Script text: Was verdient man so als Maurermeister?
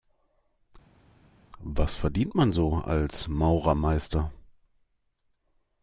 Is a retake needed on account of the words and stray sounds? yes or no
no